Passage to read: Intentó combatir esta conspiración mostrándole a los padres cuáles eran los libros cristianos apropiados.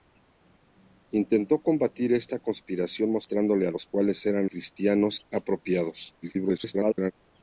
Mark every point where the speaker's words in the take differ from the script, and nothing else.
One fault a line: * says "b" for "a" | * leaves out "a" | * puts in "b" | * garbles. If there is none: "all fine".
* leaves out "padres"
* leaves out "los libros"
* garbles